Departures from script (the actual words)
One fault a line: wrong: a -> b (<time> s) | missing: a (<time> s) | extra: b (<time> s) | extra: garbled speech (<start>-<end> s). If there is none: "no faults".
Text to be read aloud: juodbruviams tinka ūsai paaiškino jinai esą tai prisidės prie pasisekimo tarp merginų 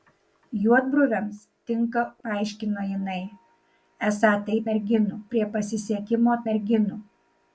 missing: ūsai (2.0 s)
wrong: prisidės -> merginų (4.7 s)
missing: tarp (6.4 s)